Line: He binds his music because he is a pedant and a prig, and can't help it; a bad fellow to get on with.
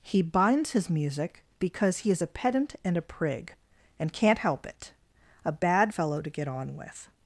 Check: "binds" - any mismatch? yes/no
no